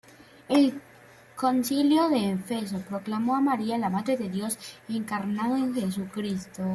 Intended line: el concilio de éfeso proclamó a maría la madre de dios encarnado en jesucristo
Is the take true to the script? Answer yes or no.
yes